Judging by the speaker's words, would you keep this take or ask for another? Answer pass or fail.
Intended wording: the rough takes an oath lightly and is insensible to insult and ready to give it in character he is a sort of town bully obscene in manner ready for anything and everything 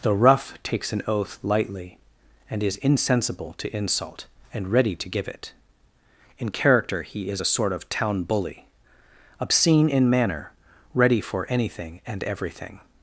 pass